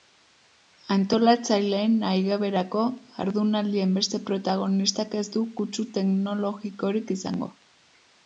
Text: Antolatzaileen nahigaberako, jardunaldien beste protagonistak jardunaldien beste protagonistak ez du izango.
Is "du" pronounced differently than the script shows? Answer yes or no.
yes